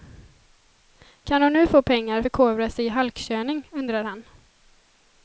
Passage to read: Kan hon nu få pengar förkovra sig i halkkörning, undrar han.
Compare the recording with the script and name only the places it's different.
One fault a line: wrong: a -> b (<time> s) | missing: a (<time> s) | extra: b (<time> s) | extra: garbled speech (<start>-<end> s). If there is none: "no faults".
no faults